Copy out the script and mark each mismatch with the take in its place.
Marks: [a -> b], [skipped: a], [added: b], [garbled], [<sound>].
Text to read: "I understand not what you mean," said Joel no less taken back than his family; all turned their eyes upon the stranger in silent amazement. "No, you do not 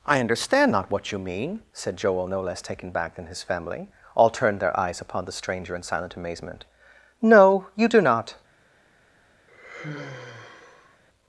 "I understand not what you mean," said Joel no less taken back than his family; all turned their eyes upon the stranger in silent amazement. "No, you do not [sigh]